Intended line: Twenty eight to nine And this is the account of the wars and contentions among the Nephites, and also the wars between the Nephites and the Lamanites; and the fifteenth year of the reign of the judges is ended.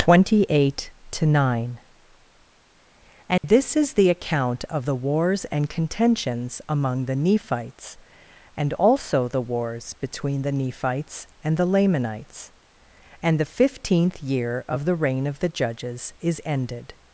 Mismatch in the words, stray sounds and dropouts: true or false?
true